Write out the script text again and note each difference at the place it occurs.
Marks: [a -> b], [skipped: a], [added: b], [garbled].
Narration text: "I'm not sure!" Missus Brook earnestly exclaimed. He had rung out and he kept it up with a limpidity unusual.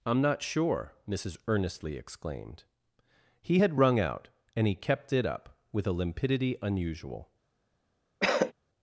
"I'm not sure!" Missus [skipped: Brook] earnestly exclaimed. He had rung out and he kept it up with a limpidity unusual.